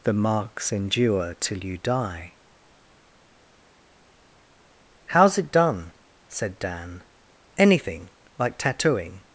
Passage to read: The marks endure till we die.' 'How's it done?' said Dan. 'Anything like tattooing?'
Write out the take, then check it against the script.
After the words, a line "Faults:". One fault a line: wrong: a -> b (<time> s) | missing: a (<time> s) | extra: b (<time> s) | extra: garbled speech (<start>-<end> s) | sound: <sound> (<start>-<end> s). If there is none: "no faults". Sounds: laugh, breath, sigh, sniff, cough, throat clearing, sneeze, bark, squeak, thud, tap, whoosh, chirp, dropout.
The marks endure till you die.' 'How's it done?' said Dan. 'Anything like tattooing?'
Faults:
wrong: we -> you (1.6 s)